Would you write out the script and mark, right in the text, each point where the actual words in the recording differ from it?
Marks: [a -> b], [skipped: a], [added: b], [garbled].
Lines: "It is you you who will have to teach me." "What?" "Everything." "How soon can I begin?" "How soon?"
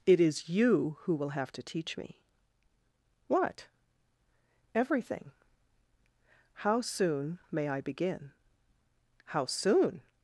"It is you [skipped: you] who will have to teach me." "What?" "Everything." "How soon [can -> may] I begin?" "How soon?"